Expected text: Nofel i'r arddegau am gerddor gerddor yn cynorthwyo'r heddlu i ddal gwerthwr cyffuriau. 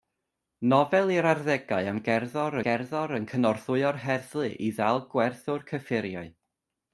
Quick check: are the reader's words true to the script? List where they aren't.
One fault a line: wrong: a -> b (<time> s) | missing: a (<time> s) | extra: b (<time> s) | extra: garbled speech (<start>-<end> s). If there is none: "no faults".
no faults